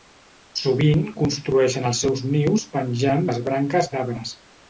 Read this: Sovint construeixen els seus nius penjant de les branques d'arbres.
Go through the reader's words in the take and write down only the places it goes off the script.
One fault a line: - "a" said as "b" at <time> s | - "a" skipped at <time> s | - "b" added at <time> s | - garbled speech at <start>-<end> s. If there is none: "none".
- "de" skipped at 3.3 s